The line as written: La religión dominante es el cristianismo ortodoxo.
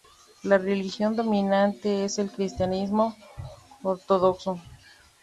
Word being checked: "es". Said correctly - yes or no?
yes